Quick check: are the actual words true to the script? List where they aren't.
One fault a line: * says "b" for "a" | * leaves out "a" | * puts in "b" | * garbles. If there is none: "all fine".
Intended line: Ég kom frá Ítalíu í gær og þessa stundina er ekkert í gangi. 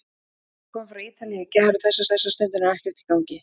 * puts in "þessa"